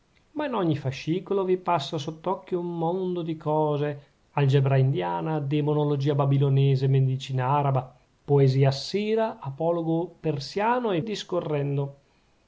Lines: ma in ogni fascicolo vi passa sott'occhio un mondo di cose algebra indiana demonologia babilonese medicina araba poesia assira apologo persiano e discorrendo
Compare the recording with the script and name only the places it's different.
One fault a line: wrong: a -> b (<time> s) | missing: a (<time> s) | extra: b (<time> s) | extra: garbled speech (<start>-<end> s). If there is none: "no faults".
no faults